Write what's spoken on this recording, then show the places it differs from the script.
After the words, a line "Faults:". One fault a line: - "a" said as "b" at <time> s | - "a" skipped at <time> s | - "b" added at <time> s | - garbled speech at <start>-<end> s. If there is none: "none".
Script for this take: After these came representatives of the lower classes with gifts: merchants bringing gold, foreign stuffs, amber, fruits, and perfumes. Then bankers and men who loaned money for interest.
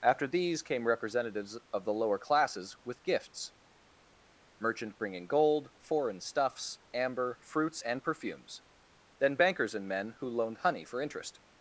After these came representatives of the lower classes with gifts: merchant bringing gold, foreign stuffs, amber, fruits, and perfumes. Then bankers and men who loaned honey for interest.
Faults:
- "merchants" said as "merchant" at 4.6 s
- "money" said as "honey" at 10.6 s